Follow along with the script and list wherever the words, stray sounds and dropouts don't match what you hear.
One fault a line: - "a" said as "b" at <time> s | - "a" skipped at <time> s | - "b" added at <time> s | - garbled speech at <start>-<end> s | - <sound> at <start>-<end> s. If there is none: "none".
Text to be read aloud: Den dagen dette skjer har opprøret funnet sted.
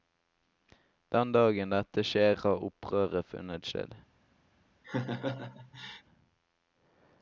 - laugh at 4.8-6.0 s